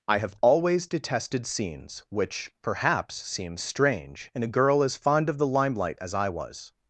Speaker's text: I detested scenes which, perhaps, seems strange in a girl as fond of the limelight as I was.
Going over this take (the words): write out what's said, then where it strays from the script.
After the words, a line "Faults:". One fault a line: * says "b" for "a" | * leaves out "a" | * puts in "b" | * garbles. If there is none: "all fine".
I have always detested scenes which, perhaps, seems strange in a girl as fond of the limelight as I was.
Faults:
* puts in "have always"